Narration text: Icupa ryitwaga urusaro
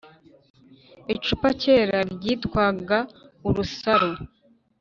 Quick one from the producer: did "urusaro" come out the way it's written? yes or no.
yes